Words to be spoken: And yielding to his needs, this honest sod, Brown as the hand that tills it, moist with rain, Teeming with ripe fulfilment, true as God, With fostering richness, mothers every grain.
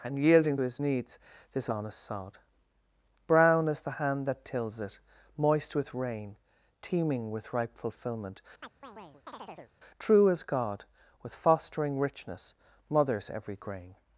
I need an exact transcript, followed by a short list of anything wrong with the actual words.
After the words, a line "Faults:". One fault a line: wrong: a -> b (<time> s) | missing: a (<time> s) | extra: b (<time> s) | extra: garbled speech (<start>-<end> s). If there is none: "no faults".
And yielding his needs, this honest sod, Brown as the hand that tills it, moist with rain, Teeming with ripe fulfilment, true as God, With fostering richness, mothers every grain.
Faults:
missing: to (0.6 s)